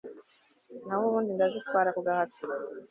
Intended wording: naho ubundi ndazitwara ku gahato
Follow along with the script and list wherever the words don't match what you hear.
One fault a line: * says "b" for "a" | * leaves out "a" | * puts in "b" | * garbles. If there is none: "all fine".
all fine